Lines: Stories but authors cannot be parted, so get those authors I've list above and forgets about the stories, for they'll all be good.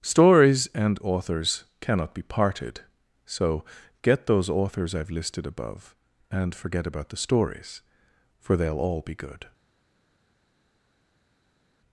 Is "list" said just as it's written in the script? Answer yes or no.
no